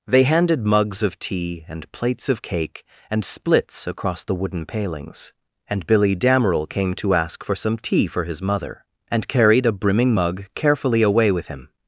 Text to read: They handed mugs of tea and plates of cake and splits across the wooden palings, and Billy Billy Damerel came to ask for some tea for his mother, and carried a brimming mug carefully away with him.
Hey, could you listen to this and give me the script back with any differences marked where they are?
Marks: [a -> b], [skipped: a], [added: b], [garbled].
They handed mugs of tea and plates of cake and splits across the wooden palings, and Billy [skipped: Billy] Damerel came to ask for some tea for his mother, and carried a brimming mug carefully away with him.